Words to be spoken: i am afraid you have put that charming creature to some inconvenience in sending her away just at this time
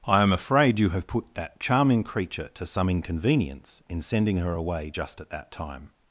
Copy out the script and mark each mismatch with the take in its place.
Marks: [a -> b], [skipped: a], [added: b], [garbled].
i am afraid you have put that charming creature to some inconvenience in sending her away just at [this -> that] time